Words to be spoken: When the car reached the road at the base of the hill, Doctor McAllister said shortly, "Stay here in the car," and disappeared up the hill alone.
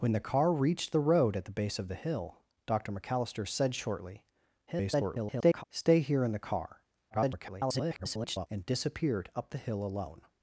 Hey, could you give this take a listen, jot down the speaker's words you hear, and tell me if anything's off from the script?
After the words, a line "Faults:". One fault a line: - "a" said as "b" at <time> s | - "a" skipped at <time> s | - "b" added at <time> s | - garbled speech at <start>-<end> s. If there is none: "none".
When the car reached the road at the base of the hill, Doctor McAllister said shortly, [garbled] "Stay here in the car," [garbled] and disappeared up the hill alone.
Faults:
- garbled speech at 4.7-5.6 s
- garbled speech at 7.1-8.5 s